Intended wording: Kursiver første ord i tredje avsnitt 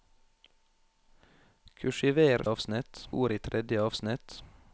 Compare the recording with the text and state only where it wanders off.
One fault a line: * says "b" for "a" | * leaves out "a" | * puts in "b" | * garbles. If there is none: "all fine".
* says "avsnitt" for "første"